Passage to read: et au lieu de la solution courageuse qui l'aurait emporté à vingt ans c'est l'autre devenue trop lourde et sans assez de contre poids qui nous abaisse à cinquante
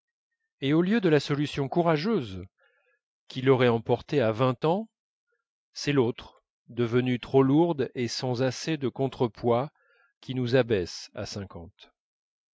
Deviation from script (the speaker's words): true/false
false